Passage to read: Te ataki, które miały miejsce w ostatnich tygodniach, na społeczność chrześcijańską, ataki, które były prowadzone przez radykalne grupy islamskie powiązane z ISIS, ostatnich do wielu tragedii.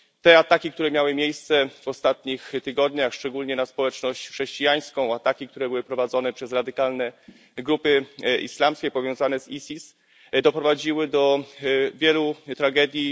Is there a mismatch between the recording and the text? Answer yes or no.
yes